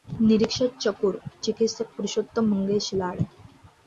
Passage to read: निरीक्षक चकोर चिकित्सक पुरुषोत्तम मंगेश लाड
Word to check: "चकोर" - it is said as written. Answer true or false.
true